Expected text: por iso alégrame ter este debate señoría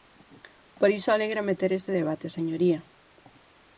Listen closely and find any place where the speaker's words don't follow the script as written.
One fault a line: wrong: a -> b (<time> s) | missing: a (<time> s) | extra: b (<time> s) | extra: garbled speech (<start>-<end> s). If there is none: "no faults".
no faults